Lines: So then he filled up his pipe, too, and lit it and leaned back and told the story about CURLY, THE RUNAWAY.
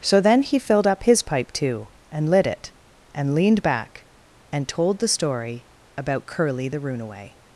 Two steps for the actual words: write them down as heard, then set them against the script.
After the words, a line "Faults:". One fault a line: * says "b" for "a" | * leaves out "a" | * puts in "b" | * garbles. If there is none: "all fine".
So then he filled up his pipe, too, and lit it and leaned back and told the story about CURLY, THE RUNAWAY.
Faults:
all fine